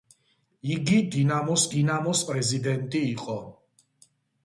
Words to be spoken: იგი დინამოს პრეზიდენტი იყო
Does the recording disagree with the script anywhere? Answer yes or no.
yes